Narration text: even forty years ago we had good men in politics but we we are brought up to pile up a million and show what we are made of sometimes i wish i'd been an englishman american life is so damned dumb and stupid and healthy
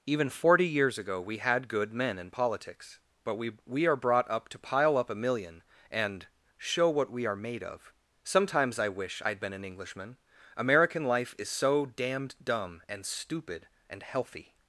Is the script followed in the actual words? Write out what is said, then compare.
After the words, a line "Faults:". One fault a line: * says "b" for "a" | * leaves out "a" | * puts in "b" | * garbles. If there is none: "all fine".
even forty years ago we had good men in politics but we we are brought up to pile up a million and show what we are made of sometimes i wish i'd been an englishman american life is so damned dumb and stupid and healthy
Faults:
all fine